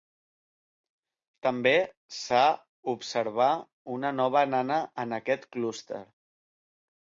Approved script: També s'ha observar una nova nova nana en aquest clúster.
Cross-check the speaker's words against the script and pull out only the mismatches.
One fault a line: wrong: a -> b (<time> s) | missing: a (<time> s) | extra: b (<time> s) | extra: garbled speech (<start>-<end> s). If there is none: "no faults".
missing: nova (4.5 s)